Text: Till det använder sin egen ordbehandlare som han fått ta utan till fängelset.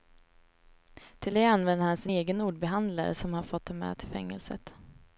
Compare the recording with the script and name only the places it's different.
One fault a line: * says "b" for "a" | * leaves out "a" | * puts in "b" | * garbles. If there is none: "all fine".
* puts in "han"
* says "med" for "utan"